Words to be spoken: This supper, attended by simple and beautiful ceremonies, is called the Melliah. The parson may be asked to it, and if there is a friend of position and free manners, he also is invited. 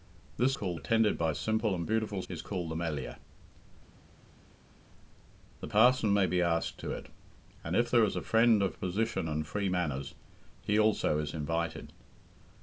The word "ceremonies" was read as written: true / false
false